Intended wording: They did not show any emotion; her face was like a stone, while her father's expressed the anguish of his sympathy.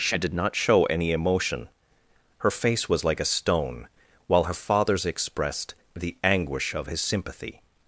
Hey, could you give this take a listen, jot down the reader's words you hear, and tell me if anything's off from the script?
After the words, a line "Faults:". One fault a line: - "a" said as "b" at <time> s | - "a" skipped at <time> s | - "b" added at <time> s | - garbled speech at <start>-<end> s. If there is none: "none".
She did not show any emotion; her face was like a stone, while her father's expressed the anguish of his sympathy.
Faults:
- "They" said as "She" at 0.0 s